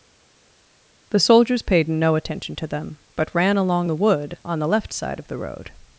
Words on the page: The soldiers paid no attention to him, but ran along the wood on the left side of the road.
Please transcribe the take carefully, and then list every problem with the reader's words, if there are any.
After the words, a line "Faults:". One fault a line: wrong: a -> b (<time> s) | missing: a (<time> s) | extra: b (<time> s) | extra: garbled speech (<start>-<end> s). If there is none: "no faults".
The soldiers paid no attention to them, but ran along the wood on the left side of the road.
Faults:
wrong: him -> them (2.7 s)